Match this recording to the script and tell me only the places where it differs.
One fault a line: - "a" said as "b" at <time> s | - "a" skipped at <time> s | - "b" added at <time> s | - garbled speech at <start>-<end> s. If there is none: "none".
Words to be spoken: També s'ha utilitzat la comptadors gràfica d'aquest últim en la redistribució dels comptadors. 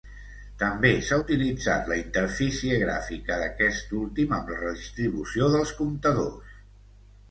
- "comptadors" said as "interfície" at 2.0 s
- "en" said as "amb" at 4.4 s